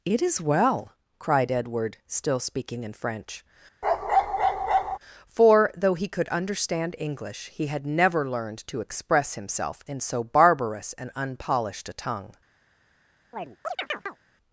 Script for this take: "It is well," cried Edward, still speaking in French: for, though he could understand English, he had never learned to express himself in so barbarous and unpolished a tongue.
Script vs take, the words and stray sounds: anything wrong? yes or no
yes